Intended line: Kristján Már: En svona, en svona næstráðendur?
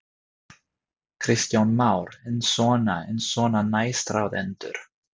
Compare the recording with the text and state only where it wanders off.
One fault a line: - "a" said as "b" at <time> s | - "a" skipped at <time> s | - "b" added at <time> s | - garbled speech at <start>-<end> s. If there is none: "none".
none